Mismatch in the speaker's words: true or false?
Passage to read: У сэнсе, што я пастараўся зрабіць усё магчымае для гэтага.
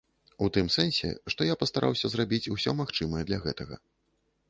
true